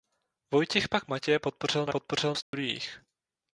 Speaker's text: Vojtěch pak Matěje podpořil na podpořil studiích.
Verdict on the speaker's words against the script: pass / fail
pass